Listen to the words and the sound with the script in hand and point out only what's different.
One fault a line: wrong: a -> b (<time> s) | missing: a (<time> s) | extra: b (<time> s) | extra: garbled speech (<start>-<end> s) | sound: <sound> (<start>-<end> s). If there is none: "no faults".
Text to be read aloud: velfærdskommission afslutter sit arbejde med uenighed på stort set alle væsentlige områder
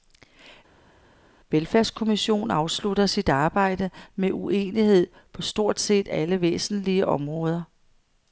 no faults